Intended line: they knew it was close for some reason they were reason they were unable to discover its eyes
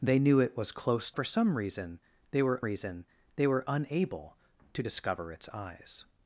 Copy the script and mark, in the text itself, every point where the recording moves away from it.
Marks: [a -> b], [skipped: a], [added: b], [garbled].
they knew it was close for some reason they were reason they were unable to discover its eyes